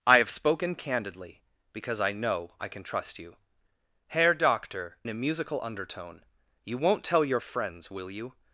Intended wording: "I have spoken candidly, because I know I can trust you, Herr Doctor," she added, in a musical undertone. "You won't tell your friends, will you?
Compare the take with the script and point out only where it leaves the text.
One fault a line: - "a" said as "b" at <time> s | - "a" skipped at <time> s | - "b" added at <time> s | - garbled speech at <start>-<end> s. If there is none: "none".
- "she added in" skipped at 5.0 s